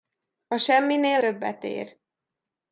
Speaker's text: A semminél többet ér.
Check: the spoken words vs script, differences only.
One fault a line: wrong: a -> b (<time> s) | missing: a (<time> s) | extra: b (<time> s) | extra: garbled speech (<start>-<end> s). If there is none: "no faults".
no faults